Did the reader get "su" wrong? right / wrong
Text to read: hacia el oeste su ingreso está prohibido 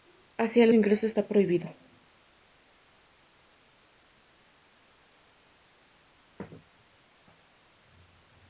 wrong